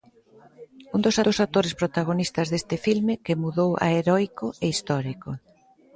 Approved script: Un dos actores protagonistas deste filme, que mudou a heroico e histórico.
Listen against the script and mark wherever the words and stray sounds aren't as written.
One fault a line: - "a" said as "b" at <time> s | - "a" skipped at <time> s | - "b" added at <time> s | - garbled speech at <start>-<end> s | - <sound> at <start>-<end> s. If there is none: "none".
- "dos" added at 1.3 s